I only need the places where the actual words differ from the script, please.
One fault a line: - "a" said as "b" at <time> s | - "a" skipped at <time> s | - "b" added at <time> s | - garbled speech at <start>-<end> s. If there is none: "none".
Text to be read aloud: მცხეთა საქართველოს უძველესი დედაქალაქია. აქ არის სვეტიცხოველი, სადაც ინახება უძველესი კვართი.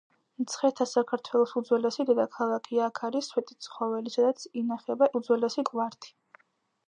none